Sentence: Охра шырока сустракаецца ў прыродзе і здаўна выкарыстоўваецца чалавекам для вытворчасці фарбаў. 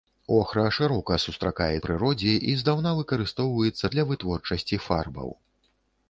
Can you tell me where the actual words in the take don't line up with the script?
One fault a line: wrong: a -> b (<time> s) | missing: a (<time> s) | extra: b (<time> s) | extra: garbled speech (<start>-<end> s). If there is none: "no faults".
missing: ў (1.8 s)
missing: чалавекам (3.9 s)